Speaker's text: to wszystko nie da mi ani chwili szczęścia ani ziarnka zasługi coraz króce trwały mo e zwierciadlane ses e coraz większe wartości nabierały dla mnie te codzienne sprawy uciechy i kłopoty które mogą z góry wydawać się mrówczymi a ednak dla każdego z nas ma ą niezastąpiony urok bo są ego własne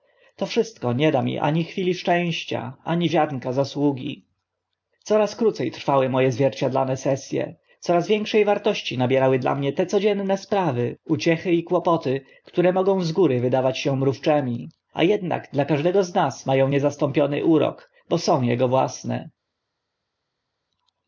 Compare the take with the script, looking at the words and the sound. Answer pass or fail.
pass